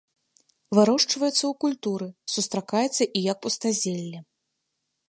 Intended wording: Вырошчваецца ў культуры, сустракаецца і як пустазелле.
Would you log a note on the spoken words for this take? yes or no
no